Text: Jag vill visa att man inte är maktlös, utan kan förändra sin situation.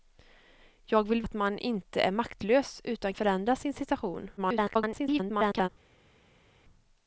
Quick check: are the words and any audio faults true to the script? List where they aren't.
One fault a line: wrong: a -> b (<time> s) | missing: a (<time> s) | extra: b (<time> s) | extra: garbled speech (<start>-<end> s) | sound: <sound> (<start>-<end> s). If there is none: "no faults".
missing: visa (1.2 s)
missing: kan (3.1 s)
extra: garbled speech (4.4-5.7 s)